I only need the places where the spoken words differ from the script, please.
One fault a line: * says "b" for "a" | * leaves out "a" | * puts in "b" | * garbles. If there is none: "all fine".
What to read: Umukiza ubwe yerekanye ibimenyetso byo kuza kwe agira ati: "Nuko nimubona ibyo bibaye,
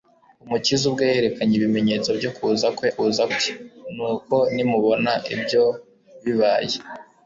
* says "kuza" for "agira"